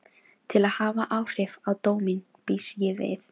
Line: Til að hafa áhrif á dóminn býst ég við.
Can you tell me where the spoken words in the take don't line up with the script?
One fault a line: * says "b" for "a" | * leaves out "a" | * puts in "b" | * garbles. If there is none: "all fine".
all fine